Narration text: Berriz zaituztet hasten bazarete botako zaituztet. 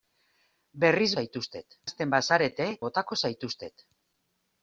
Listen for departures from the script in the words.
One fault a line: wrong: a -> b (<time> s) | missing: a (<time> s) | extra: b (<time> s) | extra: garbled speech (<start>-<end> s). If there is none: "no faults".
no faults